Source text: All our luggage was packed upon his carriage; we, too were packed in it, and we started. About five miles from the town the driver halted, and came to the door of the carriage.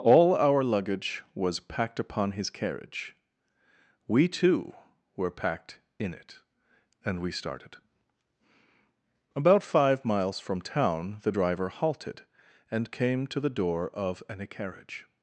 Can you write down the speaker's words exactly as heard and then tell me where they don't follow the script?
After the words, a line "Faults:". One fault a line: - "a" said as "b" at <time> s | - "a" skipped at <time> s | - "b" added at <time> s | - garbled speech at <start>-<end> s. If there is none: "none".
All our luggage was packed upon his carriage; we, too were packed in it, and we started. About five miles from town the driver halted, and came to the door of an carriage.
Faults:
- "the" skipped at 10.6 s
- "the" said as "an" at 14.3 s